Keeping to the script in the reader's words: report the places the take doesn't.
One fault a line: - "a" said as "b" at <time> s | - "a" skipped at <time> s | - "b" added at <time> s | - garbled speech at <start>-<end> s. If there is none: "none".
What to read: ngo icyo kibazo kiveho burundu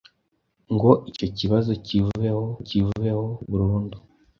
- "kiveho" added at 2.7 s